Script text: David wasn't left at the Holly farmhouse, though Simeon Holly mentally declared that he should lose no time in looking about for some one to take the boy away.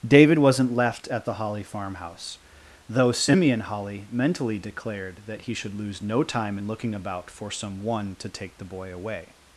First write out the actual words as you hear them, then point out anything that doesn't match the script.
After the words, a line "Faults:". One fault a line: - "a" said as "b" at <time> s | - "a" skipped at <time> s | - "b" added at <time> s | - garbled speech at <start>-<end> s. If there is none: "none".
David wasn't left at the Holly farmhouse, though Simeon Holly mentally declared that he should lose no time in looking about for some one to take the boy away.
Faults:
none